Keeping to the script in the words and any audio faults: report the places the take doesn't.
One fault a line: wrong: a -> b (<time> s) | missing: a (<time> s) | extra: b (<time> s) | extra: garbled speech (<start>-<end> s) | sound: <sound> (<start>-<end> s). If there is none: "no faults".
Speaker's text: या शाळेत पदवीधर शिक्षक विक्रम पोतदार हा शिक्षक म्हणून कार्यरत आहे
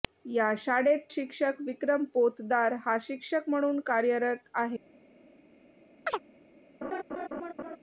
missing: पदवीधर (1.0 s)
sound: chirp (6.1-6.2 s)
sound: laugh (6.8-7.8 s)